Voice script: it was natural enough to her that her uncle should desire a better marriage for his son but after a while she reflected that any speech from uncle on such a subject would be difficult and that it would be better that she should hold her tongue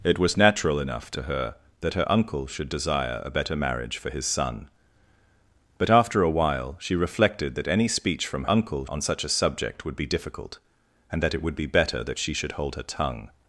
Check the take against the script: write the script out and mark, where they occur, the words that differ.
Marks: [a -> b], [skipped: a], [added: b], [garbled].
it was natural enough to her that her uncle should desire a better marriage for his son but after a while she reflected that any speech from uncle on such a subject would be difficult and that it would be better that she should hold her tongue